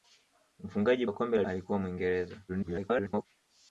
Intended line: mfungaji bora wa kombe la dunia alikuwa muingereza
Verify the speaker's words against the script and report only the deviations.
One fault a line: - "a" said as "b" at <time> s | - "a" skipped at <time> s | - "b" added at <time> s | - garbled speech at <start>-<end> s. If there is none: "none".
- "bora" skipped at 1.1 s
- "dunia" skipped at 1.4 s
- garbled speech at 2.5-3.3 s